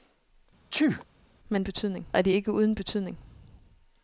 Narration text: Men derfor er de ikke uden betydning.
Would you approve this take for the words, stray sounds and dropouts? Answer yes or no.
no